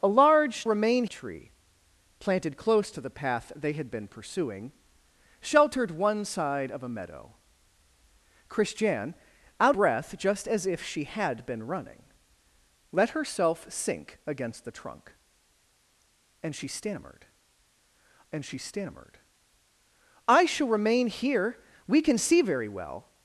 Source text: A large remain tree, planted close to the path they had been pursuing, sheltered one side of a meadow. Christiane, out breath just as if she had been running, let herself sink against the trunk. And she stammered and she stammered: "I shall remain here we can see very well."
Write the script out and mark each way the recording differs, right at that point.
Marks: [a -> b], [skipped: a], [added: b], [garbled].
A large remain tree, planted close to the path they had been pursuing, sheltered one side of a meadow. Christiane, out breath just as if she had been running, let herself sink against the trunk. And she stammered and she stammered: "I shall remain here we can see very well."